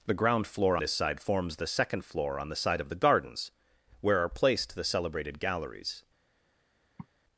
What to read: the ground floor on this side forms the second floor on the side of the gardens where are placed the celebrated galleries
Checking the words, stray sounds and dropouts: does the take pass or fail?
fail